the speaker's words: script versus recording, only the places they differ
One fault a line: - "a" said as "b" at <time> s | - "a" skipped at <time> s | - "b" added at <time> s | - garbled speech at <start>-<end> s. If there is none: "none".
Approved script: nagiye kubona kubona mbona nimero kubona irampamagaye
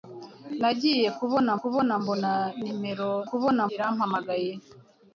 none